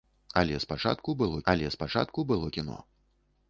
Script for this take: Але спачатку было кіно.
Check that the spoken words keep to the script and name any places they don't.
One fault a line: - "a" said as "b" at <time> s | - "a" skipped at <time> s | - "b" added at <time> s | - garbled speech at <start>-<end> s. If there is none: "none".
- "але спачатку было" added at 1.5 s